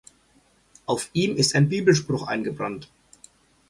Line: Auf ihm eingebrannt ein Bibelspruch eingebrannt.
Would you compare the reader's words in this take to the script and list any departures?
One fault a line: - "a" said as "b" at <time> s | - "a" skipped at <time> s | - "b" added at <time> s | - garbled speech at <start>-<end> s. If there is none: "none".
- "eingebrannt" said as "ist" at 1.4 s